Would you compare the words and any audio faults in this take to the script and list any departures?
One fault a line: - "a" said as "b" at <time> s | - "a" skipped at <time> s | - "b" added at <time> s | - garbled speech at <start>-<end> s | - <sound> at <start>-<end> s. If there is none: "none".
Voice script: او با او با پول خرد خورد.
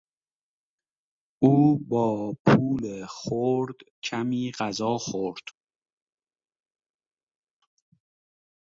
- "او با پول خرد" said as "پول خرد کمی غذا" at 2.5 s